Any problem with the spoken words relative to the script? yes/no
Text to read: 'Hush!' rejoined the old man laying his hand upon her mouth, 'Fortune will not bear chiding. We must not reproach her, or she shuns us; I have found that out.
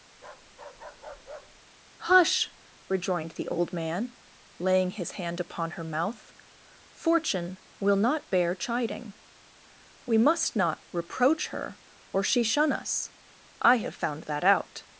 yes